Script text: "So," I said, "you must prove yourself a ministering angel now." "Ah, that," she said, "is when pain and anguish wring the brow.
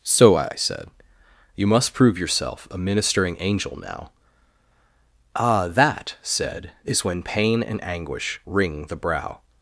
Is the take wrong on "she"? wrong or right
wrong